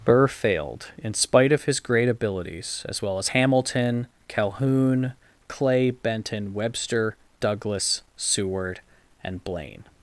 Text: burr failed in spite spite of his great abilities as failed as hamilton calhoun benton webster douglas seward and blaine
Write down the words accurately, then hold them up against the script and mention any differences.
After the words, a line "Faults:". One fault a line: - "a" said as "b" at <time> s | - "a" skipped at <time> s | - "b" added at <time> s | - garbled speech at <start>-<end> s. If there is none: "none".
burr failed in spite of his great abilities as well as hamilton calhoun clay benton webster douglas seward and blaine
Faults:
- "spite" skipped at 1.5 s
- "failed" said as "well" at 3.0 s
- "clay" added at 5.5 s